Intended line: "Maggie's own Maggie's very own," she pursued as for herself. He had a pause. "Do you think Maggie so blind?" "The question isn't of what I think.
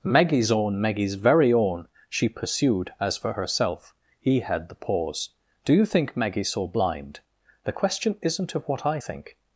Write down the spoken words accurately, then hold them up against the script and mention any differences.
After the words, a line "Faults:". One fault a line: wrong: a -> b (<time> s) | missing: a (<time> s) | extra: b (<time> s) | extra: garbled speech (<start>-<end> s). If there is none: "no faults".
"Maggie's own Maggie's very own," she pursued as for herself. He had the pause. "Do you think Maggie so blind?" "The question isn't of what I think.
Faults:
wrong: a -> the (4.7 s)